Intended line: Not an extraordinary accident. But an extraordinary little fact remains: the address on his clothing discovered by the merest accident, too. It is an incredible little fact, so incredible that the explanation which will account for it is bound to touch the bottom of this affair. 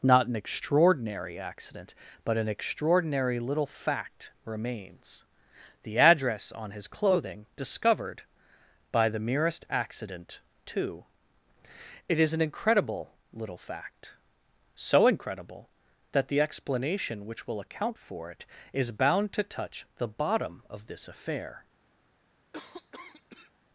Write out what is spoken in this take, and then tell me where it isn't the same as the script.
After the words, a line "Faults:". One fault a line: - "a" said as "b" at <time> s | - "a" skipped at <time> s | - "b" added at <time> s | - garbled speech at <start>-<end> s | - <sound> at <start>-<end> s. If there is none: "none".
Not an extraordinary accident. But an extraordinary little fact remains: the address on his clothing discovered by the merest accident, too. It is an incredible little fact, so incredible that the explanation which will account for it is bound to touch the bottom of this affair.
Faults:
- cough at 22.5-23.5 s